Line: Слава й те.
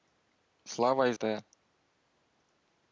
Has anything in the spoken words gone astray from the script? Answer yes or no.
no